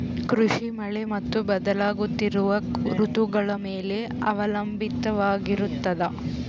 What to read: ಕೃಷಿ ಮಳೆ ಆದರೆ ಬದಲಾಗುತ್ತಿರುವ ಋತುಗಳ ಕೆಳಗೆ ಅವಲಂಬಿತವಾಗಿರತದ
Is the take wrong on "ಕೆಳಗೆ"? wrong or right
wrong